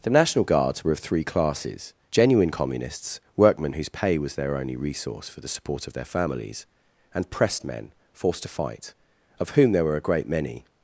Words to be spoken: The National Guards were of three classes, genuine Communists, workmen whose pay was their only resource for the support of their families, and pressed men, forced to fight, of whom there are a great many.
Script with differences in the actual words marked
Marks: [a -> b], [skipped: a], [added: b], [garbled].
The National Guards were of three classes, genuine Communists, workmen whose pay was their only resource for the support of their families, and pressed men, forced to fight, of whom there [are -> were] a great many.